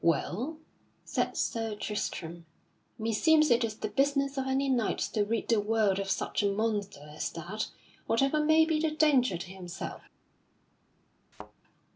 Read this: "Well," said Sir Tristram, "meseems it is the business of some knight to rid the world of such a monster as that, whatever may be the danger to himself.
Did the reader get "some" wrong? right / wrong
wrong